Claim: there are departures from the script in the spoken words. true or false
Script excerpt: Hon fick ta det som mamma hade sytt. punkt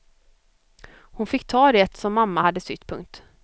false